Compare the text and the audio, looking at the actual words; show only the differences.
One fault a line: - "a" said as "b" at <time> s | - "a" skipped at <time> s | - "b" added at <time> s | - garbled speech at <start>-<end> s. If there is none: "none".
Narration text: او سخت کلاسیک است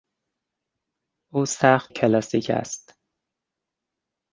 none